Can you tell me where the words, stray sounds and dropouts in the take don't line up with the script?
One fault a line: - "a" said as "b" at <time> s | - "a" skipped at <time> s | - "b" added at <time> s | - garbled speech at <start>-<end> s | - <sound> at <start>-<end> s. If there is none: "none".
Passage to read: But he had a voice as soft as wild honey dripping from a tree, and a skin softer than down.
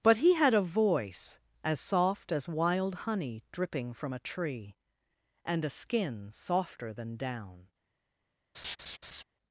- laugh at 8.5-9.2 s